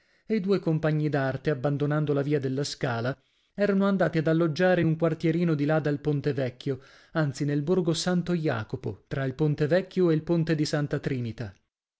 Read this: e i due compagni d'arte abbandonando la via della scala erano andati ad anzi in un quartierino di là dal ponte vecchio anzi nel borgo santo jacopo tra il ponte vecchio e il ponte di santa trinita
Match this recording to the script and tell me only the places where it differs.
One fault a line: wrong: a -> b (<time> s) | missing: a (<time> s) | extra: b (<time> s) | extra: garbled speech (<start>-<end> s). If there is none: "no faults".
wrong: anzi -> alloggiare (4.2 s)